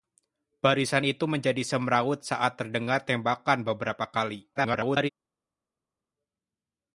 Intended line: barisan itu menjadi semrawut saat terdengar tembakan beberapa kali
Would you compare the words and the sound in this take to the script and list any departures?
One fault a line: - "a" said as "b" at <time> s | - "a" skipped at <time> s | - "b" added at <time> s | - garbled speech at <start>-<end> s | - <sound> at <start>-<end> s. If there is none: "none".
- garbled speech at 4.5-5.1 s